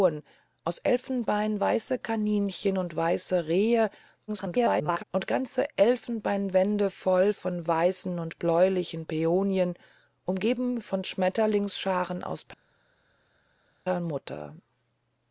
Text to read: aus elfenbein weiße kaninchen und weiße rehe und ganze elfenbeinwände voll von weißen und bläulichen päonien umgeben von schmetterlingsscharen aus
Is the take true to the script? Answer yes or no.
no